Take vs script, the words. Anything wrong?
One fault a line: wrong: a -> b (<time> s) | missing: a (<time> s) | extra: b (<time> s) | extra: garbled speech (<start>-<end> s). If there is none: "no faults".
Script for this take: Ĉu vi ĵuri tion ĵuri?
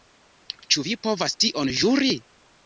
wrong: ĵuri -> povas (1.1 s)